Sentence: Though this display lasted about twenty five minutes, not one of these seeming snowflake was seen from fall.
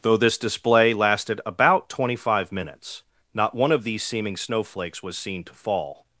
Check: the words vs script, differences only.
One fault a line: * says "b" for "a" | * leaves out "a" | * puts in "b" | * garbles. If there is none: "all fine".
* says "snowflakes" for "snowflake"
* says "to" for "from"